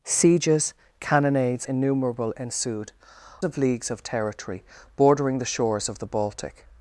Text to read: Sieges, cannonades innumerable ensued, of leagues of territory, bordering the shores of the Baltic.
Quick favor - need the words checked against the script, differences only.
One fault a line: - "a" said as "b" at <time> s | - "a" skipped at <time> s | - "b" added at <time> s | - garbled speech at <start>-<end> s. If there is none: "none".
none